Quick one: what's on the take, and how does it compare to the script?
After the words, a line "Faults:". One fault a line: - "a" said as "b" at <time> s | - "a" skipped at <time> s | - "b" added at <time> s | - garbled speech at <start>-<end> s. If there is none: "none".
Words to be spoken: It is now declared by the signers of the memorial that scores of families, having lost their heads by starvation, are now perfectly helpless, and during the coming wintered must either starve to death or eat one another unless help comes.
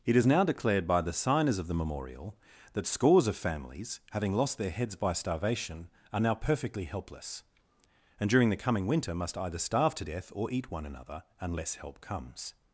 It is now declared by the signers of the memorial that scores of families, having lost their heads by starvation, are now perfectly helpless, and during the coming winter must either starve to death or eat one another unless help comes.
Faults:
- "wintered" said as "winter" at 8.9 s